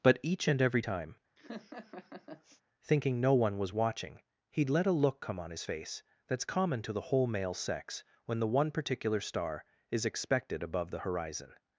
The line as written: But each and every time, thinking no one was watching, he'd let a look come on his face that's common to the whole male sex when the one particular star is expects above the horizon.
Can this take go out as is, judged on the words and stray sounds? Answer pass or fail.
fail